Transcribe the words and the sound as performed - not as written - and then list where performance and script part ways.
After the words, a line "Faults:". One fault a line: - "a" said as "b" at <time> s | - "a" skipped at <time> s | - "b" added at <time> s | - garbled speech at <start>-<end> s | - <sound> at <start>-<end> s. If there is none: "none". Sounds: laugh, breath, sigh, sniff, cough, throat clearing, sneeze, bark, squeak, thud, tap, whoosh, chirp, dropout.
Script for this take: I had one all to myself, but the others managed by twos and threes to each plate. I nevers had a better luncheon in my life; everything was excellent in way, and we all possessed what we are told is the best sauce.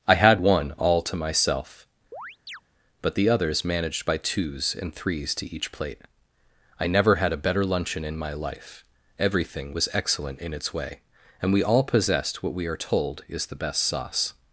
I had one all to myself, but the others managed by twos and threes to each plate. I never had a better luncheon in my life; everything was excellent in its way, and we all possessed what we are told is the best sauce.
Faults:
- chirp at 2.1-2.6 s
- "nevers" said as "never" at 6.9 s
- "its" added at 10.5 s